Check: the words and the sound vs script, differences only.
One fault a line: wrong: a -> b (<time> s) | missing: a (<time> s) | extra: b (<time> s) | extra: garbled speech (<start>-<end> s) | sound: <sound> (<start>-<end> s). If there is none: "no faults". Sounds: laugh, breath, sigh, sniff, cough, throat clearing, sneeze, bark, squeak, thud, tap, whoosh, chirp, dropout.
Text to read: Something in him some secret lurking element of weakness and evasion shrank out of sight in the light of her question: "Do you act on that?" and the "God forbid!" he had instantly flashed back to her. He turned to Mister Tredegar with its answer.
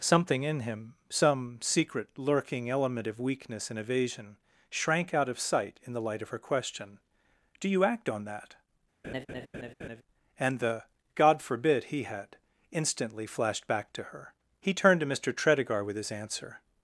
sound: laugh (9.0-10.0 s)
wrong: its -> his (15.9 s)